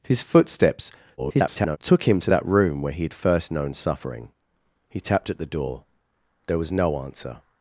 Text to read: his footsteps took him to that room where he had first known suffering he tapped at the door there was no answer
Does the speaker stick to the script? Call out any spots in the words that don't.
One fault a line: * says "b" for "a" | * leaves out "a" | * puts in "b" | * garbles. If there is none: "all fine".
* garbles